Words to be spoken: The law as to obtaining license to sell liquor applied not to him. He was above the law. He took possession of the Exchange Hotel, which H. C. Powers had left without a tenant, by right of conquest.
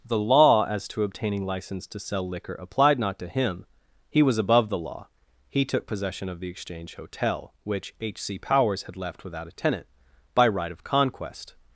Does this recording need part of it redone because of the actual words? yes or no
no